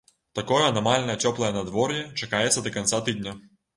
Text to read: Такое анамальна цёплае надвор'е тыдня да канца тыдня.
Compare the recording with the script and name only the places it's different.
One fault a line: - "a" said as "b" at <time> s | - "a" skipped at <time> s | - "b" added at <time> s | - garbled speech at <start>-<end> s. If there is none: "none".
- "тыдня" said as "чакаецца" at 2.2 s